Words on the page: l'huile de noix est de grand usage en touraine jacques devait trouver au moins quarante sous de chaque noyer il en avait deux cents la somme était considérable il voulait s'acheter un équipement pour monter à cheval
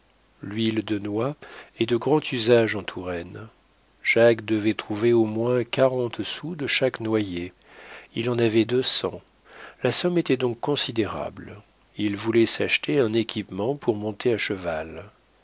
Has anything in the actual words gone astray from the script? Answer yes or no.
yes